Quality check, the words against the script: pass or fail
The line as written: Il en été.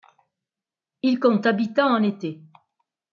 fail